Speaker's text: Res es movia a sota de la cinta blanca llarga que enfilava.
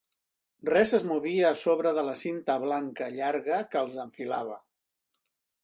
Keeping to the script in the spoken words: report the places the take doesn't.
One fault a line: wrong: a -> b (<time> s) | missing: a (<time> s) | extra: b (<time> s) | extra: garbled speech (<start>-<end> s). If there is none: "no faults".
wrong: sota -> sobre (1.6 s)
extra: els (3.8 s)